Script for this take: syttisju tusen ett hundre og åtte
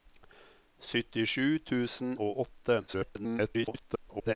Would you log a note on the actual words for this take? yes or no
yes